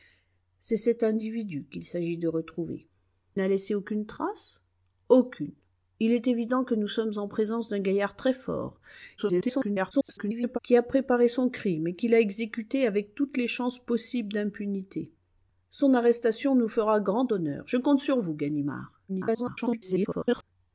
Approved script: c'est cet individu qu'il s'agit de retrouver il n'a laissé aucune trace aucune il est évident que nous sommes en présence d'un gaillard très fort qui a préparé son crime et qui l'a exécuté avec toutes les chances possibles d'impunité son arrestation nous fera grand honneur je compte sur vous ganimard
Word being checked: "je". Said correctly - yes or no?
yes